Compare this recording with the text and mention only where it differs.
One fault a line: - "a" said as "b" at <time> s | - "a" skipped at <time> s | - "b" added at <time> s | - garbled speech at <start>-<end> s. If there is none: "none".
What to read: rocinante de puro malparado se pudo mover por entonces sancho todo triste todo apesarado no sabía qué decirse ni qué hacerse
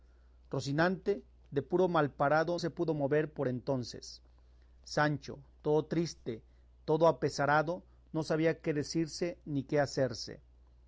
none